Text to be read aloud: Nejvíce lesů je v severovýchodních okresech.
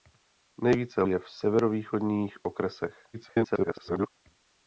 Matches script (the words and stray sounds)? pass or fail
fail